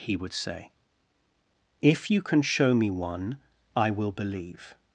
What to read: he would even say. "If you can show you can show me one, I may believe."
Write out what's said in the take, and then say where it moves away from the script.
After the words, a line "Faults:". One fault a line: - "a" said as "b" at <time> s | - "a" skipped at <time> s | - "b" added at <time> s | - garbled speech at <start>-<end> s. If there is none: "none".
he would say. "If you can show me one, I will believe."
Faults:
- "even" skipped at 0.3 s
- "you can show" skipped at 2.7 s
- "may" said as "will" at 3.9 s